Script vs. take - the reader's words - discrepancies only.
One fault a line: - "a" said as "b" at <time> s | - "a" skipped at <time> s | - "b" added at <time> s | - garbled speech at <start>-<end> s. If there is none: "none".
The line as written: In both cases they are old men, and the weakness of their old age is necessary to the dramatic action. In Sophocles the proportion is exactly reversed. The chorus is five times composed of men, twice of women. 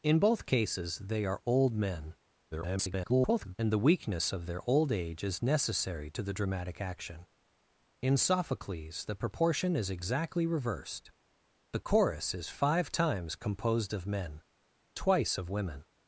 - garbled speech at 2.5-3.6 s